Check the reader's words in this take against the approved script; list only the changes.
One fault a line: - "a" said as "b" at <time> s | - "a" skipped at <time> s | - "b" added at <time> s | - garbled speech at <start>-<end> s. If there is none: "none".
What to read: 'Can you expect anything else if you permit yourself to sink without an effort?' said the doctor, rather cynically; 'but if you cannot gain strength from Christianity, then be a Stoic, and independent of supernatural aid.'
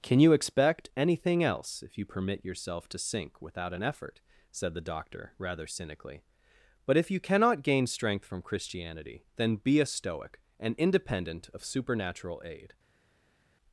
none